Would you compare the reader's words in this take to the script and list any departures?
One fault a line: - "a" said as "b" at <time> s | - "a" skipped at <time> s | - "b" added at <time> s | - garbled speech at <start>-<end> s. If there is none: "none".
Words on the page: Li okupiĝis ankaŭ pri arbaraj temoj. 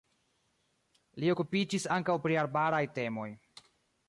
none